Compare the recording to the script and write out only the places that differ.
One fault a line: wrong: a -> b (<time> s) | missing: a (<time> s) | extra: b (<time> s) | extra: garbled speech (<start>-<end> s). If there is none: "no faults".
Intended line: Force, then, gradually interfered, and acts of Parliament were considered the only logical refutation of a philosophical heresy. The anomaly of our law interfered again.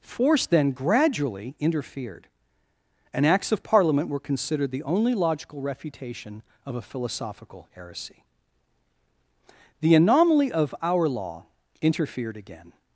no faults